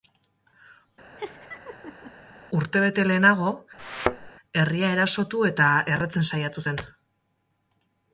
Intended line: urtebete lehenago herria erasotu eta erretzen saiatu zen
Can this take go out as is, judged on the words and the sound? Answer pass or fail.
fail